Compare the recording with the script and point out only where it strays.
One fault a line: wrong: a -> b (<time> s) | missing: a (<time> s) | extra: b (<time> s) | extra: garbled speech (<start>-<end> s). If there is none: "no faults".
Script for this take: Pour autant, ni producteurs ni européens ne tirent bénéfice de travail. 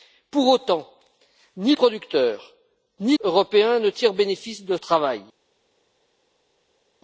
no faults